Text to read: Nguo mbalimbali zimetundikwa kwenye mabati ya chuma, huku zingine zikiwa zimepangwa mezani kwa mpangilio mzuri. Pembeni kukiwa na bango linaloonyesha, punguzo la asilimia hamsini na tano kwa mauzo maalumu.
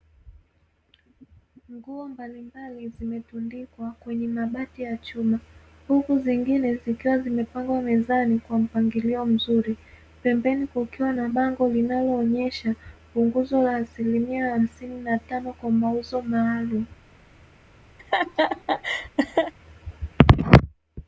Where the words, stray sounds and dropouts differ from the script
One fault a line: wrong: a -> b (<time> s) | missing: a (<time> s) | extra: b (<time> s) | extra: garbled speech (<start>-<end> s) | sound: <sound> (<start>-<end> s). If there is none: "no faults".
sound: laugh (18.0-19.5 s)